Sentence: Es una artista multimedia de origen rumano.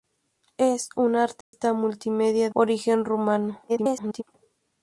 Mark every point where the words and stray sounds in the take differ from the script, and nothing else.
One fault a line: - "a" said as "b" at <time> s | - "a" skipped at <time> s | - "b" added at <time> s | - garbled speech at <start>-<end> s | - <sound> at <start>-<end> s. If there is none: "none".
- dropout at 1.4-1.5 s
- "de" skipped at 2.5 s
- garbled speech at 3.7-4.2 s